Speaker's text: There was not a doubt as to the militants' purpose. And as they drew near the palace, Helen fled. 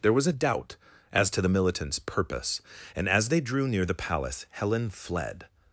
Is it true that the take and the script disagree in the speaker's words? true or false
true